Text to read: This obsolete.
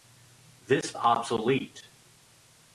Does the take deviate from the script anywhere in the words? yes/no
no